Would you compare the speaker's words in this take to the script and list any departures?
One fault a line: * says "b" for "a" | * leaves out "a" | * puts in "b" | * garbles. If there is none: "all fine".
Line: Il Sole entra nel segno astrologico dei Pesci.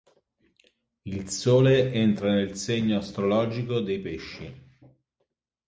all fine